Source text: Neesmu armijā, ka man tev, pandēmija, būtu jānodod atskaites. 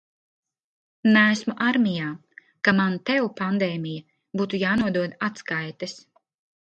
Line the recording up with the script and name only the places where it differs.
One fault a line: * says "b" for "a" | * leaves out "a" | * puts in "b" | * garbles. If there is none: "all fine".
all fine